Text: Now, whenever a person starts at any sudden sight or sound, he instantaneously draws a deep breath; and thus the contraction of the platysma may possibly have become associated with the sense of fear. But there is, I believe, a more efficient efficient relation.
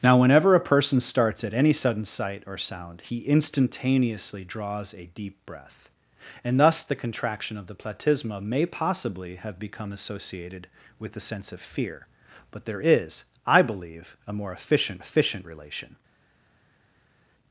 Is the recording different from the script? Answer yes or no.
no